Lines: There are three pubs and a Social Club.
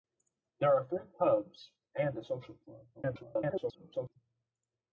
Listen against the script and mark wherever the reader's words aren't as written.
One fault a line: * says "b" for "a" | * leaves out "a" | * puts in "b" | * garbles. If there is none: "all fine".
* garbles